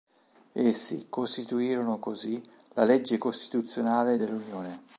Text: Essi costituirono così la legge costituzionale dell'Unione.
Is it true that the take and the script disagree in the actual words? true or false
false